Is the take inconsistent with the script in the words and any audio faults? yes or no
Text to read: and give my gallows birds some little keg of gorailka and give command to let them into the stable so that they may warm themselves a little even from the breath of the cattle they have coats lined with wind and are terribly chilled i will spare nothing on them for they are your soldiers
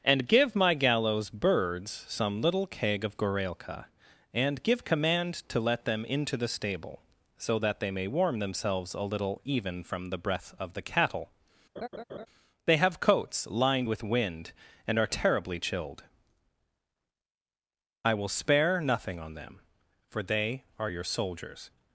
yes